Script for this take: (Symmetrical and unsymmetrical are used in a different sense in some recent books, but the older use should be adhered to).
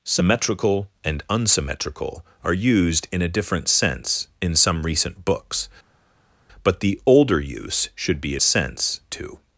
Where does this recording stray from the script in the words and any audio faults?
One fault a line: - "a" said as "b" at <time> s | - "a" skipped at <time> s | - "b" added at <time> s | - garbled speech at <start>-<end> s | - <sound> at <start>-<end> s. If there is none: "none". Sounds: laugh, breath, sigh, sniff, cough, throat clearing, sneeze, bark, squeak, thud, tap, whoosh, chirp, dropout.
- "adhered" said as "sense" at 8.4 s